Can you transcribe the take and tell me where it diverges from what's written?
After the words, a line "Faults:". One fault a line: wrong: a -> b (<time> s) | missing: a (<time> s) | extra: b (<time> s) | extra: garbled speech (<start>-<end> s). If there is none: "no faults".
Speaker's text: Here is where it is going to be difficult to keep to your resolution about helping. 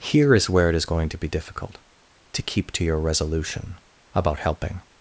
Here is where it is going to be difficult to keep to your resolution about helping.
Faults:
no faults